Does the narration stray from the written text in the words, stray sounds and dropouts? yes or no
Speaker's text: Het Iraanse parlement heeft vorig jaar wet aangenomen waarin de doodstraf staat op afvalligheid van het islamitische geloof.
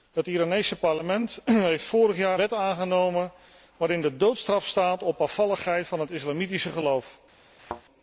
yes